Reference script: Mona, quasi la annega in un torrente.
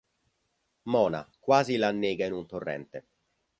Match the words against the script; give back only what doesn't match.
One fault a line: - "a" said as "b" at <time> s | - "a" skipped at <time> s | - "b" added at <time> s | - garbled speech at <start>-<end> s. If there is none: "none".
none